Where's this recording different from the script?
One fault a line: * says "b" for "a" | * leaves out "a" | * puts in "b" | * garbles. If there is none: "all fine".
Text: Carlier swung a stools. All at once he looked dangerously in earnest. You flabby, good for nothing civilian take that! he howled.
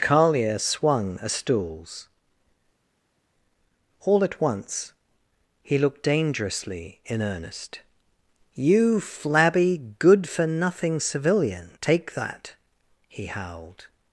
all fine